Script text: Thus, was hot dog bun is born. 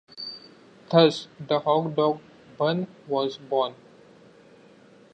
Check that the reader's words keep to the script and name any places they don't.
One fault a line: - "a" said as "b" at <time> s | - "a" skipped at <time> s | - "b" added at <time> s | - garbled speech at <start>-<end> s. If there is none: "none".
- "was" said as "the" at 1.5 s
- "is" said as "was" at 3.1 s